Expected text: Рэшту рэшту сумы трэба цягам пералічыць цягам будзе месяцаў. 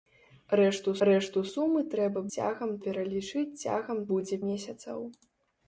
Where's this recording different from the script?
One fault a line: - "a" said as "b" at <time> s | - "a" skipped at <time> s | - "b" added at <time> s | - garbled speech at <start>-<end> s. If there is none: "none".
none